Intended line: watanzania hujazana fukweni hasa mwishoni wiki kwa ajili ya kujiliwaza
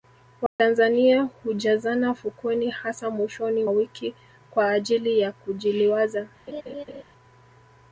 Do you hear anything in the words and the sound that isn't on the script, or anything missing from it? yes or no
yes